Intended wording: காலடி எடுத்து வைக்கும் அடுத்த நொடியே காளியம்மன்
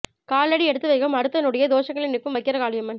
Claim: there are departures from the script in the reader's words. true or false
true